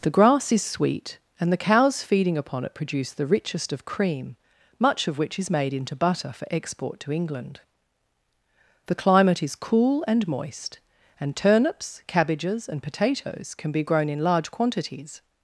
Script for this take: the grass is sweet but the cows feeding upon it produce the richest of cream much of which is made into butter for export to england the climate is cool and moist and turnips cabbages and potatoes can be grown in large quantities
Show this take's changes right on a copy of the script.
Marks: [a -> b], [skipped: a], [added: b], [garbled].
the grass is sweet [but -> and] the cows feeding upon it produce the richest of cream much of which is made into butter for export to england the climate is cool and moist and turnips cabbages and potatoes can be grown in large quantities